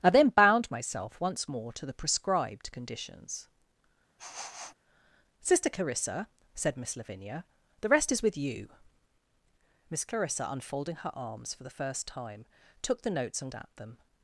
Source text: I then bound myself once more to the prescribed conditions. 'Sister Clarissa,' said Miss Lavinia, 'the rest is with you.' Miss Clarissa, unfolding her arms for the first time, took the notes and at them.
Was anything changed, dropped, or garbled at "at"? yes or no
no